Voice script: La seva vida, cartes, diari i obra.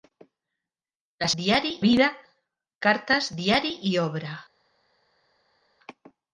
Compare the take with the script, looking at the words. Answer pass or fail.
fail